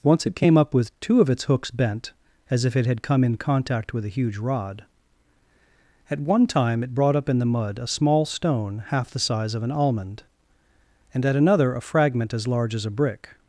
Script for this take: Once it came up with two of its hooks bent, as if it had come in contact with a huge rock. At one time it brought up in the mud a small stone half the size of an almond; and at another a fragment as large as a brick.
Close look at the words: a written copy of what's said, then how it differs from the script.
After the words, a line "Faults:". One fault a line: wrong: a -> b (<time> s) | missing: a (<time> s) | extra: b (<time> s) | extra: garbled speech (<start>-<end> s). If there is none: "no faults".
Once it came up with two of its hooks bent, as if it had come in contact with a huge rod. At one time it brought up in the mud a small stone half the size of an almond; and at another a fragment as large as a brick.
Faults:
wrong: rock -> rod (4.4 s)